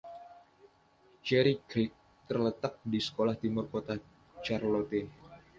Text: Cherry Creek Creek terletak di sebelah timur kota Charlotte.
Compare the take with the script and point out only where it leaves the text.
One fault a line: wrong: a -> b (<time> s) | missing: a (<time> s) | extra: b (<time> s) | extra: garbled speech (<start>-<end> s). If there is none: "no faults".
missing: Creek (1.9 s)